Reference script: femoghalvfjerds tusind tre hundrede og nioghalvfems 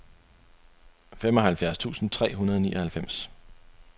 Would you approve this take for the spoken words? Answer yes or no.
yes